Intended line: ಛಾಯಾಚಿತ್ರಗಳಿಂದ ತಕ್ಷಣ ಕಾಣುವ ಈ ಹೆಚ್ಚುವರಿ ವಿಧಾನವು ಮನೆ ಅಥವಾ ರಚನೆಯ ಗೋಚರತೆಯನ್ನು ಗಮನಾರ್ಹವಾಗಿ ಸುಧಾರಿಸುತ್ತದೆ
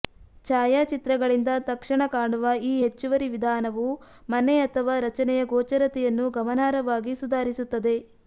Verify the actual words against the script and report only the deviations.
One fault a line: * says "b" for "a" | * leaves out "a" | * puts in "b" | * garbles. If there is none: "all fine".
all fine